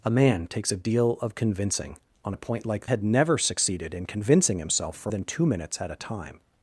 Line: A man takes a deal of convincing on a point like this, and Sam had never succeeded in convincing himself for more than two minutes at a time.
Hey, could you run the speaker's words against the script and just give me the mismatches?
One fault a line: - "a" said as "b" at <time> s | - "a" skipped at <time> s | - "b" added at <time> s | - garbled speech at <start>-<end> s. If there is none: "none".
- "this and Sam" skipped at 2.9 s
- "more" skipped at 5.1 s